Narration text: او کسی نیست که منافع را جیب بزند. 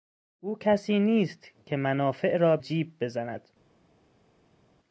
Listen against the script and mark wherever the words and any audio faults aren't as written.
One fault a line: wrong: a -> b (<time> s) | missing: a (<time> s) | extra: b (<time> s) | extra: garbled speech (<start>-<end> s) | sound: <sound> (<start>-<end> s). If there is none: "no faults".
no faults